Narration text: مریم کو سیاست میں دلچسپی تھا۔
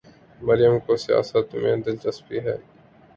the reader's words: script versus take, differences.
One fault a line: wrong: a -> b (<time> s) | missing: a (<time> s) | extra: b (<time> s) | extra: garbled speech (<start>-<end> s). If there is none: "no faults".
wrong: تھا -> ہے (2.4 s)